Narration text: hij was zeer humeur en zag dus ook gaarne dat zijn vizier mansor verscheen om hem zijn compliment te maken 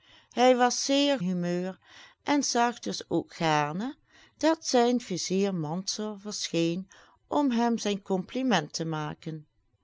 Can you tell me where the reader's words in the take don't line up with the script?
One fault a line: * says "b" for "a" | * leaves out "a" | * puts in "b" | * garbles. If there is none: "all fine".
all fine